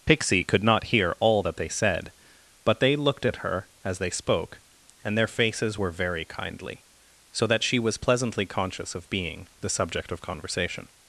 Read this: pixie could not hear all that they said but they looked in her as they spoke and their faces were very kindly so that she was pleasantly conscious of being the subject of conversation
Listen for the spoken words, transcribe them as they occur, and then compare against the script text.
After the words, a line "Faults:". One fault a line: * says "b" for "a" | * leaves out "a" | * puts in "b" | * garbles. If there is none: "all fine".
pixie could not hear all that they said but they looked at her as they spoke and their faces were very kindly so that she was pleasantly conscious of being the subject of conversation
Faults:
* says "at" for "in"